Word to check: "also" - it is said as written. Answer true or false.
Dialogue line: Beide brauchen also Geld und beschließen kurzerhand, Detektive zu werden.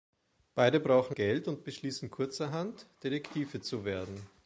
false